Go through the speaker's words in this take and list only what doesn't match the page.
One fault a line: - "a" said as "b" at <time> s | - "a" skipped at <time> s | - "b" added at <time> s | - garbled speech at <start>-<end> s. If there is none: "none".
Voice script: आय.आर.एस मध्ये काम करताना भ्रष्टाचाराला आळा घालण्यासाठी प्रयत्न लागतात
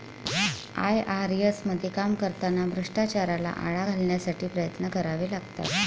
- "करावे" added at 4.9 s